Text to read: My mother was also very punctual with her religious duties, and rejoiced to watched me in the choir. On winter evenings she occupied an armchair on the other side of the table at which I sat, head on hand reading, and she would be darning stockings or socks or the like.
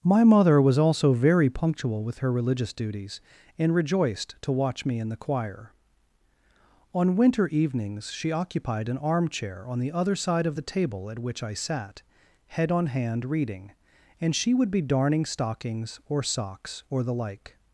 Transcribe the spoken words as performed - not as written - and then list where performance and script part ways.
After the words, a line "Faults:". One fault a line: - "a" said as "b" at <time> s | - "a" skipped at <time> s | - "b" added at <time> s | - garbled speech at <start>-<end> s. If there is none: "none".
My mother was also very punctual with her religious duties, and rejoiced to watch me in the choir. On winter evenings she occupied an armchair on the other side of the table at which I sat, head on hand reading, and she would be darning stockings or socks or the like.
Faults:
- "watched" said as "watch" at 4.5 s